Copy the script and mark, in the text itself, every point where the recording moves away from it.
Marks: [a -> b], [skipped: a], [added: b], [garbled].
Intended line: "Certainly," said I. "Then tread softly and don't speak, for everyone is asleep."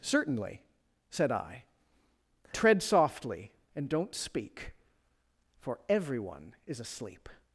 "Certainly," said I. [skipped: "Then] tread softly and don't speak, for everyone is asleep."